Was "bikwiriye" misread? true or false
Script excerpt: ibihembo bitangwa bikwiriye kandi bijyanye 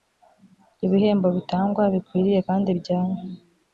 false